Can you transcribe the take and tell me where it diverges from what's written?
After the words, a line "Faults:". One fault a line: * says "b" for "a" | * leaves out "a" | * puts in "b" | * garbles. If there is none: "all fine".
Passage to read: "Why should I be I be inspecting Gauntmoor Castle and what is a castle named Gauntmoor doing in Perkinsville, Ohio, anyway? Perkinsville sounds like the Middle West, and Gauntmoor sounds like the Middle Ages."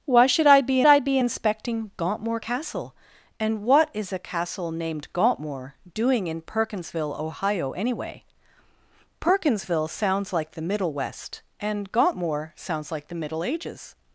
"Why should I be I be inspecting Gauntmoor Castle and what is a castle named Gauntmoor doing in Perkinsville, Ohio, anyway? Perkinsville sounds like the Middle West, and Gauntmoor sounds like the Middle Ages."
Faults:
all fine